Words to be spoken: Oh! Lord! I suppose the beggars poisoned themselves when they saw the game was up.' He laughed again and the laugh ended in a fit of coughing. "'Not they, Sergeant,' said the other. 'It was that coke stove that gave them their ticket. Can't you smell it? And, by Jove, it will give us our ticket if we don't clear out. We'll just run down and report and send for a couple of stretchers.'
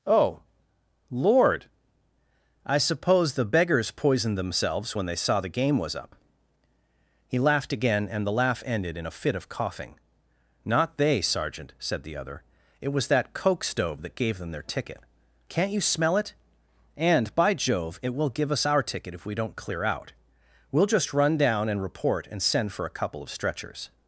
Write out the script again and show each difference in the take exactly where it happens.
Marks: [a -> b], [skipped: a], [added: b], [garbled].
Oh! Lord! I suppose the beggars poisoned themselves when they saw the game was up.' He laughed again and the laugh ended in a fit of coughing. "'Not they, Sergeant,' said the other. 'It was that coke stove that gave them their ticket. Can't you smell it? And, by Jove, it will give us our ticket if we don't clear out. We'll just run down and report and send for a couple of stretchers.'